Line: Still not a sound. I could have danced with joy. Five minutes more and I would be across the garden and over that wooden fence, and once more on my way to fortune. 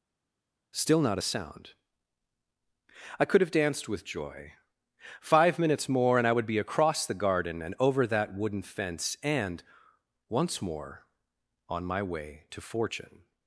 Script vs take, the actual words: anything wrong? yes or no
no